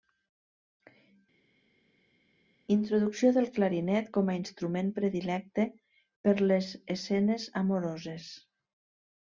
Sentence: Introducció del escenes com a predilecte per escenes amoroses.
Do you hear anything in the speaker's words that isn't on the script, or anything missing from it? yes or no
yes